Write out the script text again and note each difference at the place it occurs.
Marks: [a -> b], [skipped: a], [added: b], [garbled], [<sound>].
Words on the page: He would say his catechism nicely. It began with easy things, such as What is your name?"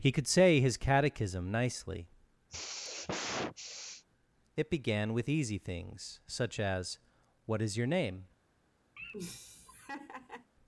He [would -> could] say his catechism nicely. [sigh] It began with easy things, such as What is your name?" [laugh]